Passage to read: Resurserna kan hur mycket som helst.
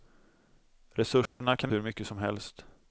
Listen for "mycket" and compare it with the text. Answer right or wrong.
right